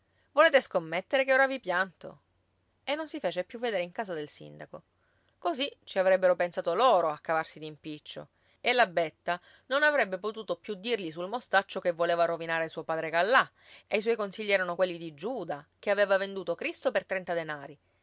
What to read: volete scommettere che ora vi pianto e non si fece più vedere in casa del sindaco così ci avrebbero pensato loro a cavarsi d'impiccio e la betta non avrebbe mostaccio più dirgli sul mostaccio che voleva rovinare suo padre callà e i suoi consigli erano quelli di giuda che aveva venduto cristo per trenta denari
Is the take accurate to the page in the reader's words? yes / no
no